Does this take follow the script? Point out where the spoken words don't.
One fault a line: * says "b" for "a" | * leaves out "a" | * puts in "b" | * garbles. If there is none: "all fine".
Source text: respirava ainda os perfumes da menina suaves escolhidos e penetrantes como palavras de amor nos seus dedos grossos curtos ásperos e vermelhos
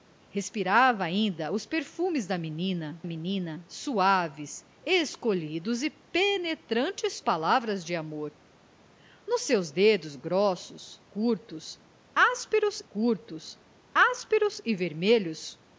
* puts in "menina"
* leaves out "como"
* puts in "curtos ásperos"